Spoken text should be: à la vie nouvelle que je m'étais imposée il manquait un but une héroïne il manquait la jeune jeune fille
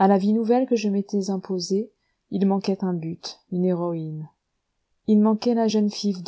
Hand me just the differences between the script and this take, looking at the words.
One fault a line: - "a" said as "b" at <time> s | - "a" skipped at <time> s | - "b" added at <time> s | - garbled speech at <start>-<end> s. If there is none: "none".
- "jeune" skipped at 5.9 s